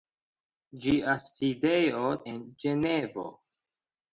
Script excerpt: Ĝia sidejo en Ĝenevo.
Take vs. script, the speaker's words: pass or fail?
pass